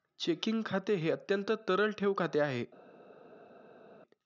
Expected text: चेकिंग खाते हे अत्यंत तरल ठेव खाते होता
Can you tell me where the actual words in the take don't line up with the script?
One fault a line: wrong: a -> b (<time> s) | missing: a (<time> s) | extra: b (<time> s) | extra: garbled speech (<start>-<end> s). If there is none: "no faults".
wrong: होता -> आहे (2.4 s)